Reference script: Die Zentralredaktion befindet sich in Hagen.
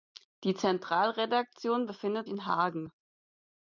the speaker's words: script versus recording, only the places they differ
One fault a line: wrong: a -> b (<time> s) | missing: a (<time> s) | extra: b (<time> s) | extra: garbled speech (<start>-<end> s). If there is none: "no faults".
missing: sich (2.3 s)